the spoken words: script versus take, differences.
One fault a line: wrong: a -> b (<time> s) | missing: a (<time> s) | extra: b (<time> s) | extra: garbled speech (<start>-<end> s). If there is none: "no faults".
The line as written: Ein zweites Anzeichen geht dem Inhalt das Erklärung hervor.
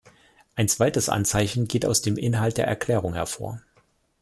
extra: aus (1.9 s)
wrong: das -> der (2.6 s)